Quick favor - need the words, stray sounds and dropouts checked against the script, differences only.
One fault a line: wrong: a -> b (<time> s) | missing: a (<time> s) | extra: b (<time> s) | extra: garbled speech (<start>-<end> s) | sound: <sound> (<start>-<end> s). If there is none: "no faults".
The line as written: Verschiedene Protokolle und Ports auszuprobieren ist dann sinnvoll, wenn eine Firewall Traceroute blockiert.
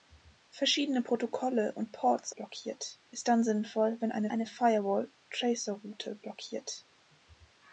wrong: auszuprobieren -> blockiert (2.3 s)
extra: eine (4.3 s)